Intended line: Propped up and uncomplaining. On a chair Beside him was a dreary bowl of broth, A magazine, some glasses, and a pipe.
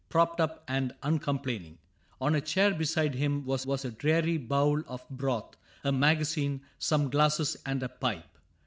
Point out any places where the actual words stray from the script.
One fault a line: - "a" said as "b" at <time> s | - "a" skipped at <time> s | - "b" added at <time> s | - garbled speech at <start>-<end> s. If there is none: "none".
- "was" added at 3.6 s